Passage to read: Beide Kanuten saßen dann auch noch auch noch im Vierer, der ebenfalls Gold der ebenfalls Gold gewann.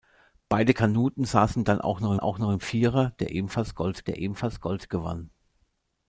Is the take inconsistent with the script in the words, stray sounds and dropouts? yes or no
no